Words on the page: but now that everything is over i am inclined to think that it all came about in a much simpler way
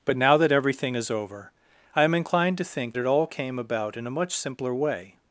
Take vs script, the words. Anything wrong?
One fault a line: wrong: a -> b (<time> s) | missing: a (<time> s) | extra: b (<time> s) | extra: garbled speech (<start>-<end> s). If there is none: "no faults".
missing: that (2.9 s)